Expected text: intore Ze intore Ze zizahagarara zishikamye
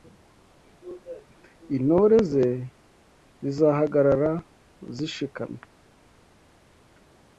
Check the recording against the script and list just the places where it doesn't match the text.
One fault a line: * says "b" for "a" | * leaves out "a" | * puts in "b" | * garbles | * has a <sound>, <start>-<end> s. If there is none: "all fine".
* leaves out "intore Ze"